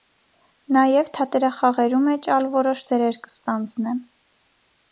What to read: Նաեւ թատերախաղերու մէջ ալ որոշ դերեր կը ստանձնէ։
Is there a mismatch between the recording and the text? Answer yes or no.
no